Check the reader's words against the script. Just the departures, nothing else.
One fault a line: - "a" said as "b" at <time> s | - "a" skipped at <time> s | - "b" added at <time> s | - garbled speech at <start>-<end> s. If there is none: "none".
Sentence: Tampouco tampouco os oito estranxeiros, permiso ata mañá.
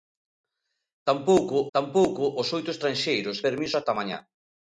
none